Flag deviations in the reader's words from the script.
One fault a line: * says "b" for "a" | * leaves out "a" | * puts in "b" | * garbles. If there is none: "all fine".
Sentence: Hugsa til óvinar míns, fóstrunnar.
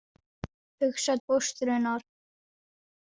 * leaves out "til óvinar míns"